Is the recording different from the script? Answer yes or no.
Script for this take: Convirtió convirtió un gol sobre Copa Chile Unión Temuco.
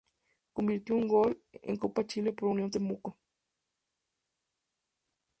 yes